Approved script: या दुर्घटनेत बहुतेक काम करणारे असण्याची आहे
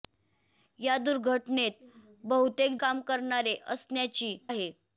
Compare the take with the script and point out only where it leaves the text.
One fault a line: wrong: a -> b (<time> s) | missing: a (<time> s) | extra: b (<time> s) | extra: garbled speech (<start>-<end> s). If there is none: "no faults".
no faults